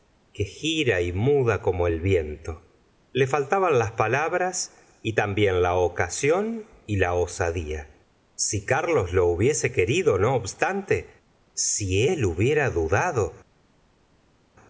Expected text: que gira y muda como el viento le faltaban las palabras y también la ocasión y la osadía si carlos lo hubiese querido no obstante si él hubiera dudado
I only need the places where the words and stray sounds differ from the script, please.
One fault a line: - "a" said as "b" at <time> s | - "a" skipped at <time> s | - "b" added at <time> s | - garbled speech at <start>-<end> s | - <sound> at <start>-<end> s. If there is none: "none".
none